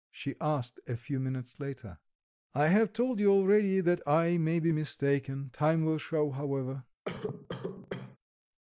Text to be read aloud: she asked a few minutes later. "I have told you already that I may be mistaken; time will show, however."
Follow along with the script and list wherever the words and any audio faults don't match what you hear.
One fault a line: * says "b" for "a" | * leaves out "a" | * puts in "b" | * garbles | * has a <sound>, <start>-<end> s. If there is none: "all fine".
* has a cough, 7.1-8.2 s